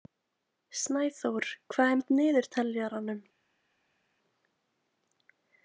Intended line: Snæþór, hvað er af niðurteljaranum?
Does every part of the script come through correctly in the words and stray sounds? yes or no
yes